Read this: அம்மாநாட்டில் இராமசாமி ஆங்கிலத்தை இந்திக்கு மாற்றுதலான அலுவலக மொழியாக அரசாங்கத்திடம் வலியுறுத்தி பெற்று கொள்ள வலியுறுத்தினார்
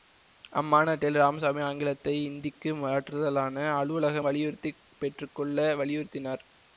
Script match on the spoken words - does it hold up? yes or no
no